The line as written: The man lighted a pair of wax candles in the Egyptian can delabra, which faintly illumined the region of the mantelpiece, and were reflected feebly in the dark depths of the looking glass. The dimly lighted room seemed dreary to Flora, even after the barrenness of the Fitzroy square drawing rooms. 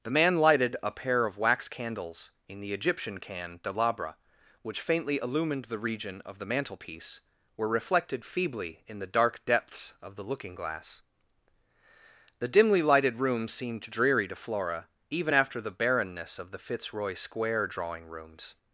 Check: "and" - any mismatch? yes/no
yes